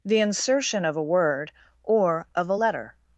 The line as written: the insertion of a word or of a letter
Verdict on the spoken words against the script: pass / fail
pass